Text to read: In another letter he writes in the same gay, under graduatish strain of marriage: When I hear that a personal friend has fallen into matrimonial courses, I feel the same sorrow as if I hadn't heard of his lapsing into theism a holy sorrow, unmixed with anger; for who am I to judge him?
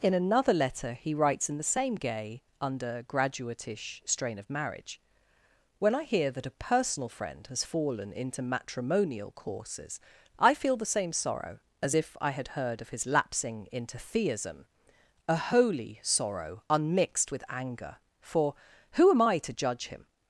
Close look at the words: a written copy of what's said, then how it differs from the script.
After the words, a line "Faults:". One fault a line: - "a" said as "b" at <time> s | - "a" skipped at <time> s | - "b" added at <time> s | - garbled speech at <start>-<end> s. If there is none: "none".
In another letter he writes in the same gay, under graduatish strain of marriage: When I hear that a personal friend has fallen into matrimonial courses, I feel the same sorrow as if I had heard of his lapsing into theism a holy sorrow, unmixed with anger; for who am I to judge him?
Faults:
- "hadn't" said as "had" at 12.3 s